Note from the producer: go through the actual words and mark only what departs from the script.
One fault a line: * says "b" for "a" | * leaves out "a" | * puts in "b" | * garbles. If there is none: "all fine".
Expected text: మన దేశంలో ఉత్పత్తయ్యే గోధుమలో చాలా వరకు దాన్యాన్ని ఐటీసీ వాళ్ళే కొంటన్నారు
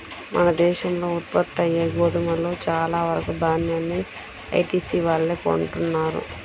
all fine